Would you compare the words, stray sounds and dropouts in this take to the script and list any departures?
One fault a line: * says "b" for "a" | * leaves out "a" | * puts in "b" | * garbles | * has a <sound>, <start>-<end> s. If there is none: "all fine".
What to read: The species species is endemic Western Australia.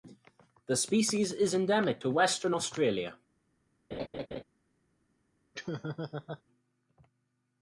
* leaves out "species"
* puts in "to"
* has a laugh, 3.9-4.4 s
* has a laugh, 5.5-6.4 s